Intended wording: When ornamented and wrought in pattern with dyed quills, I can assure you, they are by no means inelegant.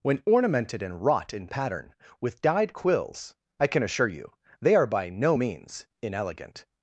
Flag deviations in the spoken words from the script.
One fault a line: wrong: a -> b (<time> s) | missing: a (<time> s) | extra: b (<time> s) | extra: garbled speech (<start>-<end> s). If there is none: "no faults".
no faults